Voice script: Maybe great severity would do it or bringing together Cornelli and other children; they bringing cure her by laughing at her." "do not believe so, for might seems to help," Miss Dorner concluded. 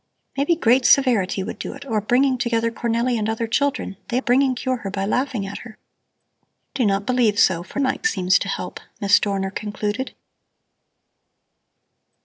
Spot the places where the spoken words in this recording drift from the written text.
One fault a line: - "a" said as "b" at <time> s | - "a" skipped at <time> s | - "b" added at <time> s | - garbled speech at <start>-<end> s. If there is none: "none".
none